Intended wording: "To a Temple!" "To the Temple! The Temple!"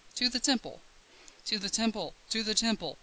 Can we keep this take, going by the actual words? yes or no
no